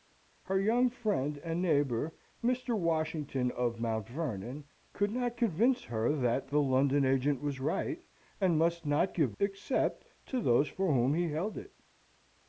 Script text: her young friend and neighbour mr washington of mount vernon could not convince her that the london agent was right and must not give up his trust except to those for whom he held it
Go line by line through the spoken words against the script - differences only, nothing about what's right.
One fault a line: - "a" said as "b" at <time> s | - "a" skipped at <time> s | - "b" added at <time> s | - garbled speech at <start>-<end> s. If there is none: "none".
- "up his trust" skipped at 9.4 s